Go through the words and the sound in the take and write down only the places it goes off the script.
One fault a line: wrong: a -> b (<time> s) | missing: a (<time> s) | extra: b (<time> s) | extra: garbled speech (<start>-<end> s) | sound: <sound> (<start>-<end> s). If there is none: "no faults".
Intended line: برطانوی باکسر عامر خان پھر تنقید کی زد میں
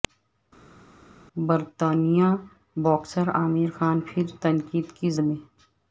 missing: زد (5.1 s)